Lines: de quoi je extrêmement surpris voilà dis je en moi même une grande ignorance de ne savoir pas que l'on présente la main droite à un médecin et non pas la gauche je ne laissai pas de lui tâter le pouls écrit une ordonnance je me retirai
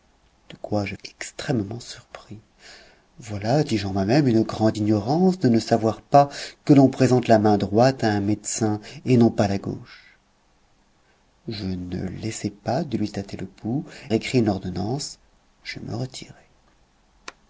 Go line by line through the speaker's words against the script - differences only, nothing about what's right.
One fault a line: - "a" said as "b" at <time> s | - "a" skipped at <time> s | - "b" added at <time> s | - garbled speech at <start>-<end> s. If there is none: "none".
none